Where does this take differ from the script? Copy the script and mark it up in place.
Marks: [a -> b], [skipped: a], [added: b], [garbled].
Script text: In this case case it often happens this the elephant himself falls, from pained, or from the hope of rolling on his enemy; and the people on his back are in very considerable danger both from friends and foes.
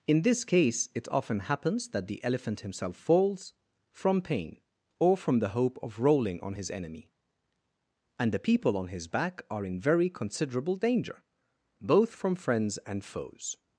In this case [skipped: case] it often happens [this -> that] the elephant himself falls, from [pained, -> pain] or from the hope of rolling on his enemy; and the people on his back are in very considerable danger both from friends and foes.